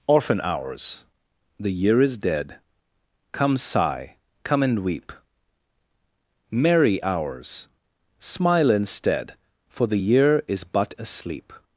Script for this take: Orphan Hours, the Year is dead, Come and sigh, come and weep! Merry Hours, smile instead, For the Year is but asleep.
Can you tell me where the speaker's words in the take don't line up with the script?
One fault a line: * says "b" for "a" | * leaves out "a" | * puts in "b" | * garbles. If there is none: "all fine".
* leaves out "and"